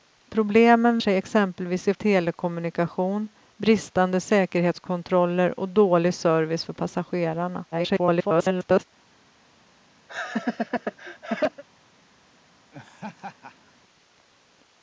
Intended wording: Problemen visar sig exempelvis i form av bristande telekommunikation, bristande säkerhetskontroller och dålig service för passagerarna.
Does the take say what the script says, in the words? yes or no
no